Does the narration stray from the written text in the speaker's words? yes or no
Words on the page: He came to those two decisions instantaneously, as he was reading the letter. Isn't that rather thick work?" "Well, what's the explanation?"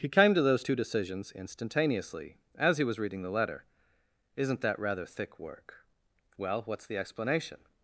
no